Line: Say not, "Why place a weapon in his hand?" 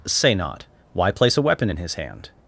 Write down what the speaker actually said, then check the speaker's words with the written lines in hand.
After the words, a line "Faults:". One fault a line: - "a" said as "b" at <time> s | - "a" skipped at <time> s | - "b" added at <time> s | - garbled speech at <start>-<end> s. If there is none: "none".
Say not, "Why place a weapon in his hand?"
Faults:
none